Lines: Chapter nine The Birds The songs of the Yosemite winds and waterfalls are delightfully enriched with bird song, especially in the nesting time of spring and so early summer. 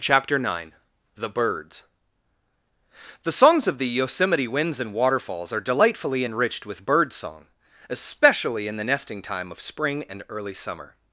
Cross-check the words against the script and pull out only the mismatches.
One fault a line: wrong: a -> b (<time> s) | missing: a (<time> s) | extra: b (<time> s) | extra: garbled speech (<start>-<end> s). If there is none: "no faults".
missing: so (10.2 s)